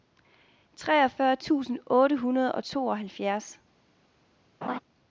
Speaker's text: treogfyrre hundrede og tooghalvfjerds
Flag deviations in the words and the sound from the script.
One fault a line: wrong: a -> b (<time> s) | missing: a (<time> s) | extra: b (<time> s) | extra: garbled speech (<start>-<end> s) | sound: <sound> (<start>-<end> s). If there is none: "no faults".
extra: tusind otte (1.4 s)
sound: laugh (4.6-4.8 s)